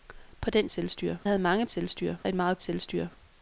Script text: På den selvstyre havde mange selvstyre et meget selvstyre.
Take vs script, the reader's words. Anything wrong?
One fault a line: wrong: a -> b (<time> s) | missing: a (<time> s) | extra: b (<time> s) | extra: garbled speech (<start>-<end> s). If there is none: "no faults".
no faults